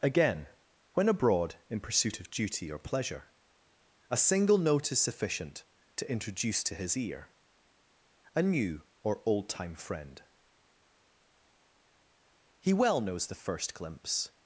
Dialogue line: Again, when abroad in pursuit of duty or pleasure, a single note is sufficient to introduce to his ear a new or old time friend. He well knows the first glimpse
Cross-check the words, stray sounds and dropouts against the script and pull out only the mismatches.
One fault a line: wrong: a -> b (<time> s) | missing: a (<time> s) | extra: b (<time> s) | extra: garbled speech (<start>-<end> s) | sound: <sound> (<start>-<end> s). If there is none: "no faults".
no faults